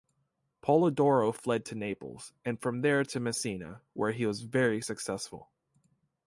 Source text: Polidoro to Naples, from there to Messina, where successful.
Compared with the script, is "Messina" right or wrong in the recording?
right